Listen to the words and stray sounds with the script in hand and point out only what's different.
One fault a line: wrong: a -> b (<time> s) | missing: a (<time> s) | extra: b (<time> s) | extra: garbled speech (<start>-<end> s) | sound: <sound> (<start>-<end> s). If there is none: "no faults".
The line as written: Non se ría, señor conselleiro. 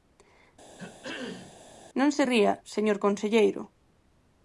sound: throat clearing (0.8-1.6 s)